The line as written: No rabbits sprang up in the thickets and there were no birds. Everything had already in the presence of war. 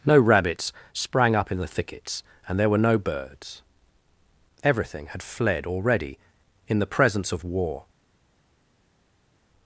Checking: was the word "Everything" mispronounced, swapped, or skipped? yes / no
no